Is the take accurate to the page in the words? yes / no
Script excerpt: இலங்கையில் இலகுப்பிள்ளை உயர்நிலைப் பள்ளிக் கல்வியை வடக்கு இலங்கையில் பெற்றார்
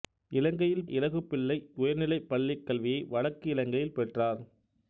yes